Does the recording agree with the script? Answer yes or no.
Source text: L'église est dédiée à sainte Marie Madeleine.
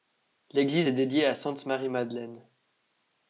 yes